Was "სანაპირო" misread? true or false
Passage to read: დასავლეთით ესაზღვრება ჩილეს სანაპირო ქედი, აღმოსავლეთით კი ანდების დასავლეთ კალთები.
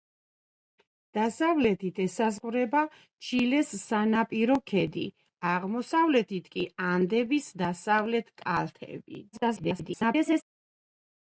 false